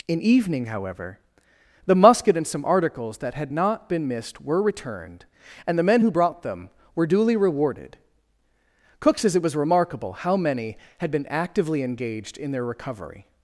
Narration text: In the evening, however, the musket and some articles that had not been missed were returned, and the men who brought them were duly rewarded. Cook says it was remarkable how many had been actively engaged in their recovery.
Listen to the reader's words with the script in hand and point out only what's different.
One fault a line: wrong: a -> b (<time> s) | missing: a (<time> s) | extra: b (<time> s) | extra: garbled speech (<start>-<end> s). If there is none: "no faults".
missing: the (0.2 s)